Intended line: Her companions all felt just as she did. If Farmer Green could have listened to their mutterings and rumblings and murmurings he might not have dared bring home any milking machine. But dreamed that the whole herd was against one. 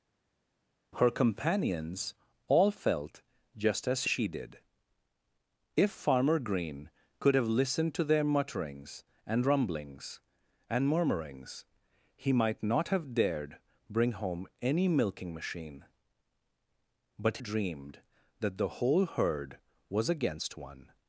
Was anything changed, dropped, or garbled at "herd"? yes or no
no